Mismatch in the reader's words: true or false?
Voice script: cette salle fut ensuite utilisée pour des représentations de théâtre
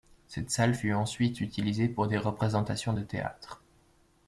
false